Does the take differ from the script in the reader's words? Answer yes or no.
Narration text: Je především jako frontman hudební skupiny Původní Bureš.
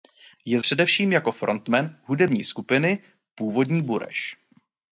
no